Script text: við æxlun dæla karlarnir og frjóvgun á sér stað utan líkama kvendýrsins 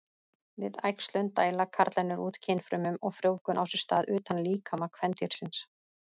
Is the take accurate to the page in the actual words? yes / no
no